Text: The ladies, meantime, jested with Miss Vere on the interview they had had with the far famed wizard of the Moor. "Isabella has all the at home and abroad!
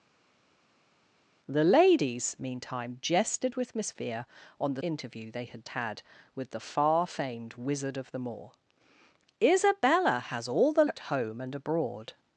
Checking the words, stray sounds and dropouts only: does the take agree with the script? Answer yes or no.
yes